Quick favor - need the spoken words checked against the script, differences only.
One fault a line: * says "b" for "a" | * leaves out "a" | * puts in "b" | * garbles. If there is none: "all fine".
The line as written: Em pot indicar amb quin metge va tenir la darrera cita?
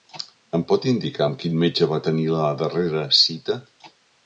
all fine